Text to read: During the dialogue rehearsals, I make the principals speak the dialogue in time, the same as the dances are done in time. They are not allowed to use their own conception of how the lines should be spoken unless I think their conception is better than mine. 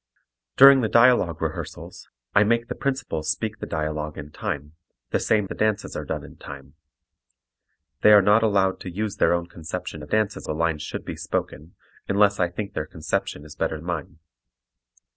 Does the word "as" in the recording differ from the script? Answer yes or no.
yes